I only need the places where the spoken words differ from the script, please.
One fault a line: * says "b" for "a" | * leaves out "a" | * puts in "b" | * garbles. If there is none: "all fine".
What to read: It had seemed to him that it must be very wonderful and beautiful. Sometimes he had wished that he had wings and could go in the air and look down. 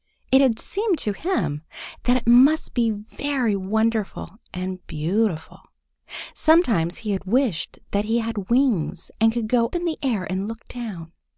all fine